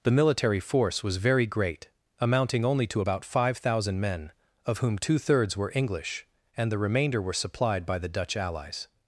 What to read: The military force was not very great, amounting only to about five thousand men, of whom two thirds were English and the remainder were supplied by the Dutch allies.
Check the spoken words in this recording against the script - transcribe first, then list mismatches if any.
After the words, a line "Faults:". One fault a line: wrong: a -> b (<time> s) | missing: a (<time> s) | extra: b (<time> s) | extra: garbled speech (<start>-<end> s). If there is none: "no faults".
The military force was very great, amounting only to about five thousand men, of whom two thirds were English and the remainder were supplied by the Dutch allies.
Faults:
missing: not (1.2 s)